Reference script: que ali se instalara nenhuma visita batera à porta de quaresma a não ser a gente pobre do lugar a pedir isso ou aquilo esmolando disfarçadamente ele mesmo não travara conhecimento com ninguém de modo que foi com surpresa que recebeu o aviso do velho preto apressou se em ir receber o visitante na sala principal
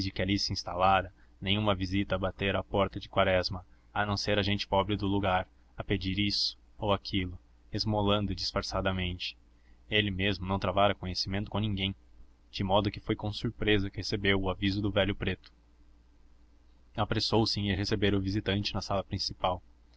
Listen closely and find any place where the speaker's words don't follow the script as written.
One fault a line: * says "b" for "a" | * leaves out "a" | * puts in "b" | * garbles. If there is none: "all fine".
all fine